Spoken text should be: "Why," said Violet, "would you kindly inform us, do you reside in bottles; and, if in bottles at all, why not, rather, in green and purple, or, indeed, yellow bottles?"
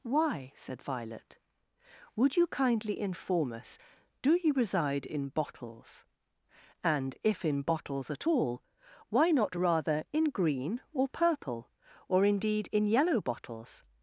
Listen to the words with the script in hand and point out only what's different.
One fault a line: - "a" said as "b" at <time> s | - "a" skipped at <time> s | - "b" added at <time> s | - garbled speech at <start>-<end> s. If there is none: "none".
- "and" said as "or" at 10.9 s
- "in" added at 12.7 s